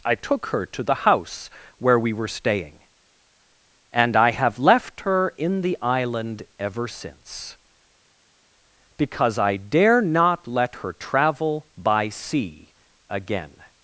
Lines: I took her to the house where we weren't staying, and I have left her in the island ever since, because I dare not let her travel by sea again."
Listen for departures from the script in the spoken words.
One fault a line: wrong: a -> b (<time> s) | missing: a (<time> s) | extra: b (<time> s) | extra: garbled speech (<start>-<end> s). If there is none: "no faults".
wrong: weren't -> were (2.1 s)